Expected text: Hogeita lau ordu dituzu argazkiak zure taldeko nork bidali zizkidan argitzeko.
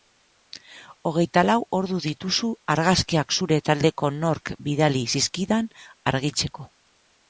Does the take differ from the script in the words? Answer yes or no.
no